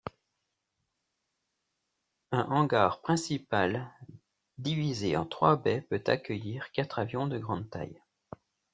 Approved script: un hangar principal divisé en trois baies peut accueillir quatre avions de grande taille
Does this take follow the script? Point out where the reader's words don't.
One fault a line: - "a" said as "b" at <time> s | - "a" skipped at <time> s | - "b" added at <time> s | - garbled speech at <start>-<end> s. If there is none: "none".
none